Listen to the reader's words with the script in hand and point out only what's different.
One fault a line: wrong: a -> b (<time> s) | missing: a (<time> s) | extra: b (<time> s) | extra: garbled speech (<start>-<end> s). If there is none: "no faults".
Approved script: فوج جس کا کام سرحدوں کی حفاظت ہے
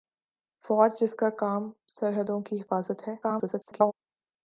extra: garbled speech (3.2-3.9 s)